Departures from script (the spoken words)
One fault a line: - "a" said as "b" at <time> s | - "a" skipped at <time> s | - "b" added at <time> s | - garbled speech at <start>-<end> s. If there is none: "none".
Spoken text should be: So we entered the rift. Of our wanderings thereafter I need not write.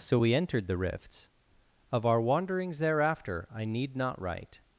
- "rift" said as "rifts" at 0.8 s